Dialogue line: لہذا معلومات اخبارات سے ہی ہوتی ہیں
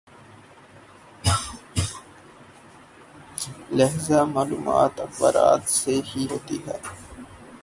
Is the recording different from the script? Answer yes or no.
no